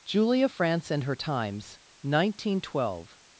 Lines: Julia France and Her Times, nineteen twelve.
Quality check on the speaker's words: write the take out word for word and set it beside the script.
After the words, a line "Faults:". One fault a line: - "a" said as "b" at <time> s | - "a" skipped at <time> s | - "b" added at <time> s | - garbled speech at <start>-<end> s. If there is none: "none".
Julia France and Her Times, nineteen twelve.
Faults:
none